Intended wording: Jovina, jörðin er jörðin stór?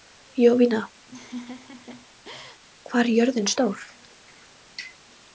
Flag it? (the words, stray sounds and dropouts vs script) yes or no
yes